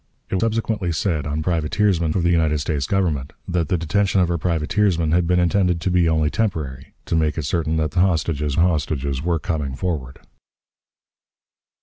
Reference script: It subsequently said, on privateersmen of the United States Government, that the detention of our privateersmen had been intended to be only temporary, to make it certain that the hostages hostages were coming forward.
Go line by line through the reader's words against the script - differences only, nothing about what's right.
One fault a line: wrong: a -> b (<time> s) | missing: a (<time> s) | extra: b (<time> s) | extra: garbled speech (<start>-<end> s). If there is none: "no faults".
no faults